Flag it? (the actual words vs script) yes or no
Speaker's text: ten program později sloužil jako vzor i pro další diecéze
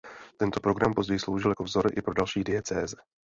yes